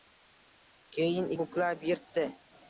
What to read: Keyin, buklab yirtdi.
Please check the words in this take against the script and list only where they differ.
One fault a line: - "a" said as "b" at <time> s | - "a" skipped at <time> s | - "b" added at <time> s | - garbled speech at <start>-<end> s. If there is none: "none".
none